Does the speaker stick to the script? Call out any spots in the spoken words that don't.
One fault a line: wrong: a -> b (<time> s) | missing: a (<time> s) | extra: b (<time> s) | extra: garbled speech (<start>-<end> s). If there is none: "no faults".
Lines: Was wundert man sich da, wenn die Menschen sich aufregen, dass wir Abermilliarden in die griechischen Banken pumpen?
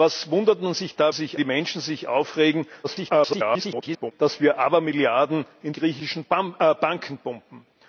wrong: wenn -> sich (1.1 s)
extra: garbled speech (2.8-4.1 s)
missing: die (5.7 s)